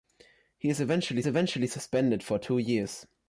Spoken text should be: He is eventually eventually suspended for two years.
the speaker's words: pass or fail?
pass